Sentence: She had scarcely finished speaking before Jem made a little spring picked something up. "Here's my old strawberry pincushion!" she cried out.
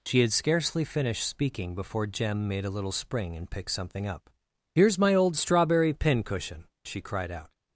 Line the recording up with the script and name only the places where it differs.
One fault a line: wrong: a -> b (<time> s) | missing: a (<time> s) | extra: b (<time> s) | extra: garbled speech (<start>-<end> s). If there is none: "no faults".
extra: and (3.4 s)